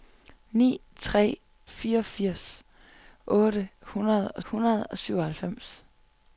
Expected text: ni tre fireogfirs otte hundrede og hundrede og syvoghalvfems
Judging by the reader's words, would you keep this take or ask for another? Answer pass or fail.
pass